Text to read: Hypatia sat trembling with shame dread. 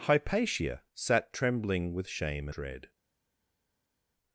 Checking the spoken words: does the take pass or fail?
pass